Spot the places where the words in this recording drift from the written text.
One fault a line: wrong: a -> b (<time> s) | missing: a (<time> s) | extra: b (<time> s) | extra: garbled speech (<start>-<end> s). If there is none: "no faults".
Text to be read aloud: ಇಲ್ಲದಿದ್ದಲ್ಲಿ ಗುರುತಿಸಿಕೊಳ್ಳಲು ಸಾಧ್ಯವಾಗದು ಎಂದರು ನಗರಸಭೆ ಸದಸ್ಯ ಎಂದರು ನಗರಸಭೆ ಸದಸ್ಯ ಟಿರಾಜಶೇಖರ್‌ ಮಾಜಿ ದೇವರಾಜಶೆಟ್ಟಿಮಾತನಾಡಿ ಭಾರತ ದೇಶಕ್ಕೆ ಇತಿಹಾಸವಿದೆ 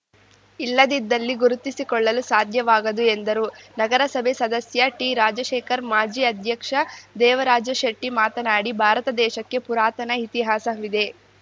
missing: ಎಂದರು ನಗರಸಭೆ ಸದಸ್ಯ (4.9 s)
extra: ಅಧ್ಯಕ್ಷ (6.2 s)
extra: ಪುರಾತನ (9.7 s)